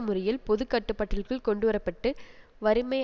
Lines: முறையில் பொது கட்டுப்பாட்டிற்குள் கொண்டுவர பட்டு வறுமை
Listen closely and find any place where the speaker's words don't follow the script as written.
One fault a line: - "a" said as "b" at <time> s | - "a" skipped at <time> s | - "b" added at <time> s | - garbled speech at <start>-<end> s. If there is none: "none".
none